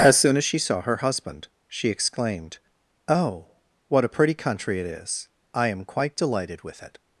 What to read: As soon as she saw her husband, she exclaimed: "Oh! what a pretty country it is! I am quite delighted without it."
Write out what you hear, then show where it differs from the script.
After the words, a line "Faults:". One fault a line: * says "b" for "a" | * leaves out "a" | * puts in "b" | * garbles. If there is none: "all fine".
As soon as she saw her husband, she exclaimed: "Oh! what a pretty country it is! I am quite delighted with it."
Faults:
* says "with" for "without"